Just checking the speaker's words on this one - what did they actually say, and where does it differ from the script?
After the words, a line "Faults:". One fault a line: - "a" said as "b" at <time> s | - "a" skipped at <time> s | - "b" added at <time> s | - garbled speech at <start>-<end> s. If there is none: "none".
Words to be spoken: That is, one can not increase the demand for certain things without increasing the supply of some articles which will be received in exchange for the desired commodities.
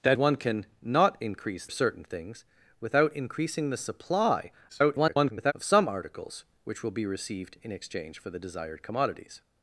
That one can not increase certain things without increasing the supply [garbled] of some articles which will be received in exchange for the desired commodities.
Faults:
- "is" skipped at 0.2 s
- "the demand for" skipped at 1.7 s
- garbled speech at 4.7-5.5 s